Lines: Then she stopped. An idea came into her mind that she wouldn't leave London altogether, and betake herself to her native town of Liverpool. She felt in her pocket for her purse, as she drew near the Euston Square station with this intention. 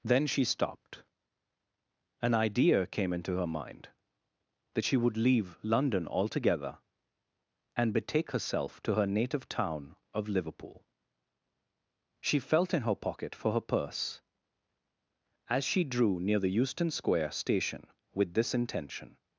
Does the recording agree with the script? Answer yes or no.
no